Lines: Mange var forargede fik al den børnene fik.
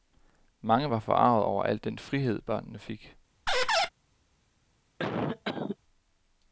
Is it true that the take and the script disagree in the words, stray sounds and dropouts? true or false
true